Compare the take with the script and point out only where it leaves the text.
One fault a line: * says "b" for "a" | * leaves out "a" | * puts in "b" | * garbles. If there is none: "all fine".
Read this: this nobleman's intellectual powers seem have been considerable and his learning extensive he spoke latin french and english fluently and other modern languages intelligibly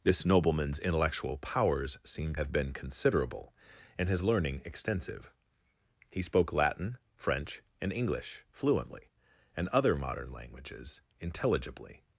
all fine